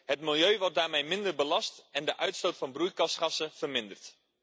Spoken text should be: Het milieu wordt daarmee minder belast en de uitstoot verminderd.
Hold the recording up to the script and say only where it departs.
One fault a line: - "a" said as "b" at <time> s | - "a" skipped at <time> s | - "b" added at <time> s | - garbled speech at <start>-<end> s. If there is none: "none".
- "van broeikasgassen" added at 2.6 s